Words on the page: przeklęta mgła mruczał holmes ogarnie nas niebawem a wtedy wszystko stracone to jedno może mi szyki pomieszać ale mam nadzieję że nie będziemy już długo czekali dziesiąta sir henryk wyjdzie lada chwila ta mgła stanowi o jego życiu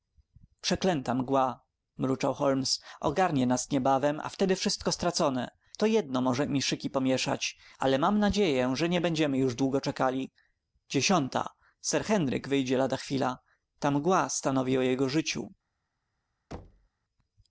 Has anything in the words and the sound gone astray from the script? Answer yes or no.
yes